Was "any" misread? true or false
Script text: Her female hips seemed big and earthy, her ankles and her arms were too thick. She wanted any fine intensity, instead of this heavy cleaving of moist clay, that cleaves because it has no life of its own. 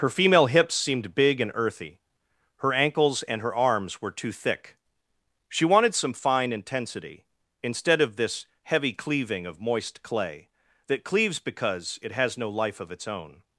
true